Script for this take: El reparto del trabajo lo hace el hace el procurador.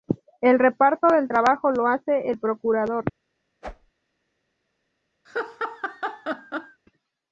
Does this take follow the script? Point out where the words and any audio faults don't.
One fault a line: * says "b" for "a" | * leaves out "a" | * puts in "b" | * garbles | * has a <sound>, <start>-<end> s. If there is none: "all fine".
* leaves out "hace el"
* has a whoosh, 3.6-3.9 s
* has a laugh, 5.2-6.8 s